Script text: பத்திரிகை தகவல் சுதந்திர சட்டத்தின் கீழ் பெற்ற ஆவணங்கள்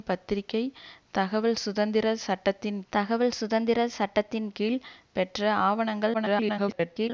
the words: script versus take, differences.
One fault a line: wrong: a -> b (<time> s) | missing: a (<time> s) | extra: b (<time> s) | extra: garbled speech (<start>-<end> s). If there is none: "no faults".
extra: தகவல் சுதந்திர சட்டத்தின் (2.9 s)
extra: garbled speech (6.1-7.1 s)